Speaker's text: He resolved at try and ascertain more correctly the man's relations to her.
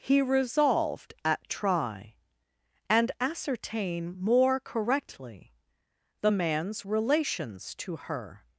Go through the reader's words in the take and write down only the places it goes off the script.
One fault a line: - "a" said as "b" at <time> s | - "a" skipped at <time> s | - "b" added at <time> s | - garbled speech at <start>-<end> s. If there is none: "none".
none